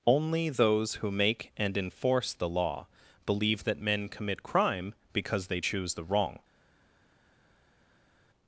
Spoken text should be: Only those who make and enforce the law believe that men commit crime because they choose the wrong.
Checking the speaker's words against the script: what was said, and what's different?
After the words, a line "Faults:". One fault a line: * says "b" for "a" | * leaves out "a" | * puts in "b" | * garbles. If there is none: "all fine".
Only those who make and enforce the law believe that men commit crime because they choose the wrong.
Faults:
all fine